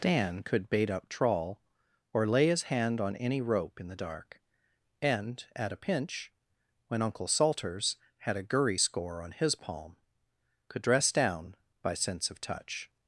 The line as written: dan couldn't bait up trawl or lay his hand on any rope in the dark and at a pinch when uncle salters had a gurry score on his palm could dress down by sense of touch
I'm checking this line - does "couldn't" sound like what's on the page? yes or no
no